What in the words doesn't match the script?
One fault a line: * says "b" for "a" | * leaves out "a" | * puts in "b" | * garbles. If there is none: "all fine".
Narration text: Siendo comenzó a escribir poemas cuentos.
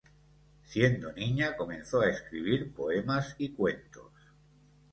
* puts in "niña"
* puts in "y"